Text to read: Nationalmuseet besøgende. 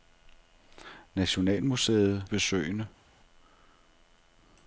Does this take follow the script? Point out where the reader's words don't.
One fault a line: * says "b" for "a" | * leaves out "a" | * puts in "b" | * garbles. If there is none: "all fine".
all fine